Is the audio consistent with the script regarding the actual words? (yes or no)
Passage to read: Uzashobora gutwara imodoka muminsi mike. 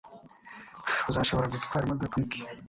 no